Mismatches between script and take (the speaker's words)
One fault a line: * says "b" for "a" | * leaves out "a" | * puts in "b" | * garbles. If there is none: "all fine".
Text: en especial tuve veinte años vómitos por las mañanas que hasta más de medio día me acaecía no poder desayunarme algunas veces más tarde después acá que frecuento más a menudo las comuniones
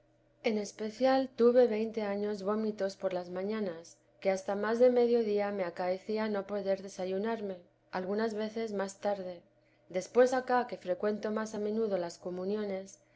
all fine